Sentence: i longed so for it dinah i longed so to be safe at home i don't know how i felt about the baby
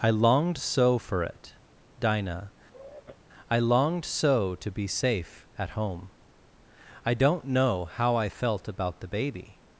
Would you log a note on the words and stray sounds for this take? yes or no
yes